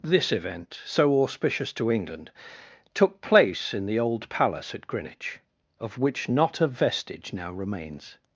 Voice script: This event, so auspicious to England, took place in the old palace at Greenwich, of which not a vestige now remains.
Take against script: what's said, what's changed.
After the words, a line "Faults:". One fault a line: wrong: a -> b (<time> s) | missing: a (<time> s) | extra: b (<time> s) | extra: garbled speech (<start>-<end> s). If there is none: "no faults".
This event, so auspicious to England, took place in the old palace at Greenwich, of which not a vestige now remains.
Faults:
no faults